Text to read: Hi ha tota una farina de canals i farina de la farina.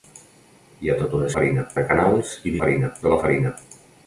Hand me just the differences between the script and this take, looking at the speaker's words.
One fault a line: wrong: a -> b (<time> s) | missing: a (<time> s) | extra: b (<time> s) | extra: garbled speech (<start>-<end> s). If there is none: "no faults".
no faults